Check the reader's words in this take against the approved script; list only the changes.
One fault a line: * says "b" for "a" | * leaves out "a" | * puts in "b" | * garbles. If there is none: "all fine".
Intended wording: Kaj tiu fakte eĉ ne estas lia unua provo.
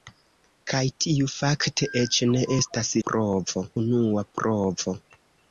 * says "provo" for "lia"